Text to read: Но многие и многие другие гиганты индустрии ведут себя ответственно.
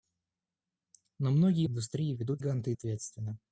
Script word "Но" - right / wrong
right